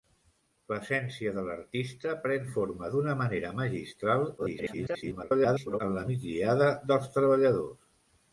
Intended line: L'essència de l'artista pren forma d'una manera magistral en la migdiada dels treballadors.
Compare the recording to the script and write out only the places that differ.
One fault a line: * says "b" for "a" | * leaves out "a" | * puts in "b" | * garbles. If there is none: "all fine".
* garbles